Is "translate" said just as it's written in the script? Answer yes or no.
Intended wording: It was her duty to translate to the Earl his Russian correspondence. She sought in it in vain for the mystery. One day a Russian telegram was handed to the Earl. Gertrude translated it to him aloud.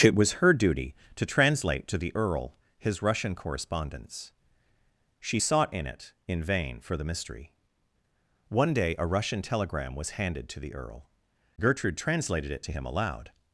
yes